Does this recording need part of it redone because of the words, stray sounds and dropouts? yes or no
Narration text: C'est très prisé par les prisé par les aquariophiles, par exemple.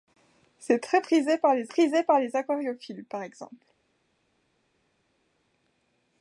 no